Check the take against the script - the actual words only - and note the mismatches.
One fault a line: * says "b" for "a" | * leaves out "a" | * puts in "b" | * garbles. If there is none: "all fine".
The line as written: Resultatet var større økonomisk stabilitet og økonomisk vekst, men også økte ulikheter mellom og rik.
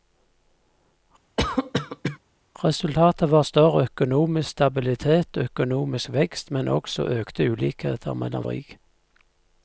all fine